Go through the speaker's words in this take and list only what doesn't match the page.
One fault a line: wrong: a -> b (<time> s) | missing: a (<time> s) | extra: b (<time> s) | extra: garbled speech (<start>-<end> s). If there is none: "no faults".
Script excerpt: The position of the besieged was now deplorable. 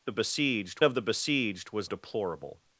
wrong: position -> besieged (0.1 s)
missing: now (1.9 s)